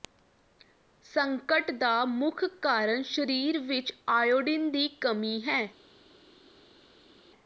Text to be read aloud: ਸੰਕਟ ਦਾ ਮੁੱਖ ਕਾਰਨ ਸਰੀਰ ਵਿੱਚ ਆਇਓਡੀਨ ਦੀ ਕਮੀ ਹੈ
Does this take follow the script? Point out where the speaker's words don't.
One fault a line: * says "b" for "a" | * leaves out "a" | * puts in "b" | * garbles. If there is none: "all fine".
all fine